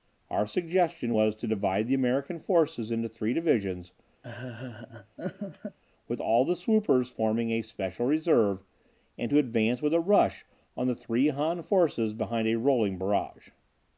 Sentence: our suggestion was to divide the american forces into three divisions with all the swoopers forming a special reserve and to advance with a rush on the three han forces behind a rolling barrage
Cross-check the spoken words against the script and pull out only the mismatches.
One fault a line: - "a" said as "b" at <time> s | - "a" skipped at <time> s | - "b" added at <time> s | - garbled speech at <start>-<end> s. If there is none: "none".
none